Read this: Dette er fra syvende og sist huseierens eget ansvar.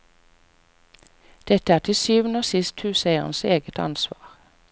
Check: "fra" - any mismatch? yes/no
yes